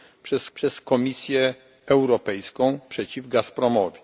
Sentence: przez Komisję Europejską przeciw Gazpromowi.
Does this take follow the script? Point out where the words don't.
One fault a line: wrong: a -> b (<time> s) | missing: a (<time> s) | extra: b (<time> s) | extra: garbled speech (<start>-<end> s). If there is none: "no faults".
extra: przez (0.5 s)